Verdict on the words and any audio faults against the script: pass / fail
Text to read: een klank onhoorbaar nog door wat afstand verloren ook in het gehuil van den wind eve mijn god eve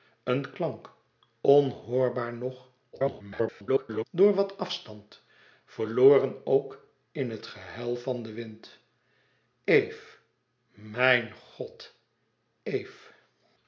fail